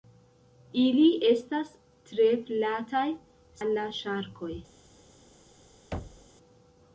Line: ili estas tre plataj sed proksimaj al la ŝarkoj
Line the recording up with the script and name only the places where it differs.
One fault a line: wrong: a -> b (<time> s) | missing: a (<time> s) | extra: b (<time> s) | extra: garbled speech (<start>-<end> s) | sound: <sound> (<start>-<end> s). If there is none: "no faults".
missing: sed proksimaj (3.0 s)
sound: thud (5.9-6.3 s)